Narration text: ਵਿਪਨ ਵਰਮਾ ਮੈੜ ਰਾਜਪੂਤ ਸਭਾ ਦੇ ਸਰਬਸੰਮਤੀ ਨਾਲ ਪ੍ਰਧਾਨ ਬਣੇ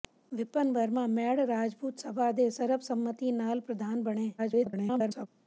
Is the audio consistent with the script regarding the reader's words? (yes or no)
no